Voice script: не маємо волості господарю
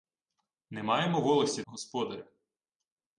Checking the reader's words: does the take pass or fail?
pass